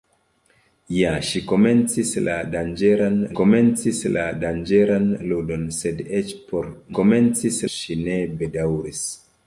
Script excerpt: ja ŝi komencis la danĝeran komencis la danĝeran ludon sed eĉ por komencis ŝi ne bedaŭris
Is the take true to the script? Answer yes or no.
yes